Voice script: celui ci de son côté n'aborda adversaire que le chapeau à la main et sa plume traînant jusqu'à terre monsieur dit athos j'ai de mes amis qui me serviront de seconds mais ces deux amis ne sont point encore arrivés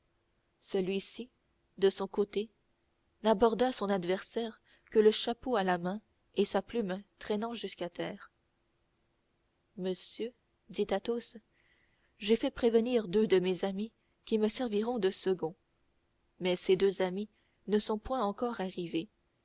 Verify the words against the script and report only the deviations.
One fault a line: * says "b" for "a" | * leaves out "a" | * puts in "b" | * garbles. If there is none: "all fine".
* puts in "son"
* puts in "fait prévenir deux"